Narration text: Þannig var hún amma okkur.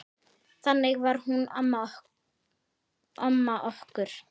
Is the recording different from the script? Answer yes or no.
no